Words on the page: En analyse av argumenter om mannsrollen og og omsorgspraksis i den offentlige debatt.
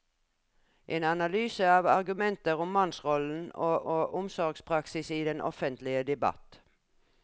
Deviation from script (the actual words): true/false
false